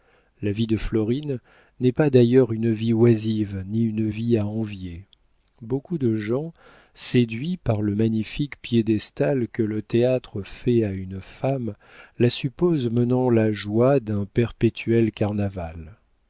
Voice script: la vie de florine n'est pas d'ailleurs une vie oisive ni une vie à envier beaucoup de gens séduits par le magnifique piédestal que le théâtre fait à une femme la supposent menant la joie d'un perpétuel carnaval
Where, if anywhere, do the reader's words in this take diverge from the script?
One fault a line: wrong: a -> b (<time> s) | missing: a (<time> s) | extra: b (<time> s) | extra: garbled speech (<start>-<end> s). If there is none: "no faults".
no faults